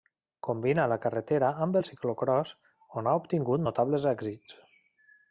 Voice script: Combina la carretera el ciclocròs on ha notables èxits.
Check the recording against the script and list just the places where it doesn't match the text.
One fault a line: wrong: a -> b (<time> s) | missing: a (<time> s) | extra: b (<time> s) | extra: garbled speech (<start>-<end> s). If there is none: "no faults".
extra: amb (1.6 s)
extra: obtingut (3.2 s)